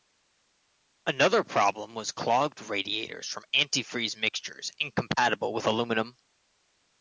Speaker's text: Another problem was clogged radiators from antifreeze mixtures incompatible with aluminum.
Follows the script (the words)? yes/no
yes